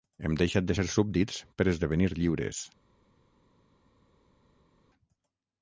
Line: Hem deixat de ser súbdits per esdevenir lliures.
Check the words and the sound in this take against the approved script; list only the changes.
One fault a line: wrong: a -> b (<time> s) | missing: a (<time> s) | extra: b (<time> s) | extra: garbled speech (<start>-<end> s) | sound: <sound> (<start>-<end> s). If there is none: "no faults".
no faults